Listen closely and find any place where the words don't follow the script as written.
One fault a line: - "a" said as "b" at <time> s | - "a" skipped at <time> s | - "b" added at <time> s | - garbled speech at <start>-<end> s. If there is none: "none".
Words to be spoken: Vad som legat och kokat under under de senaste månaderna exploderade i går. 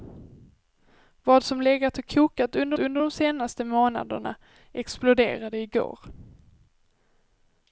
none